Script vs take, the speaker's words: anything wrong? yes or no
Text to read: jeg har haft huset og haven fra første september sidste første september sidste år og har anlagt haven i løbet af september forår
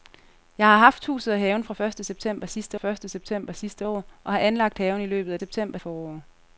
no